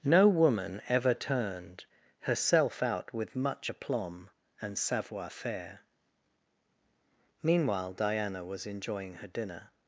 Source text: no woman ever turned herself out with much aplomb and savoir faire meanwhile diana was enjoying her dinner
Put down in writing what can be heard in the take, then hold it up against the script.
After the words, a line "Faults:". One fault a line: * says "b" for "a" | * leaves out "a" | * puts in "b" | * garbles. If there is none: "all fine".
no woman ever turned herself out with much aplomb and savoir faire meanwhile diana was enjoying her dinner
Faults:
all fine